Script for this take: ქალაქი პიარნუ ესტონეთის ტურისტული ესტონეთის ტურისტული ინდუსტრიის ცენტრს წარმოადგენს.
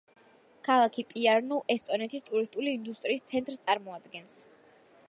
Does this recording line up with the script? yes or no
no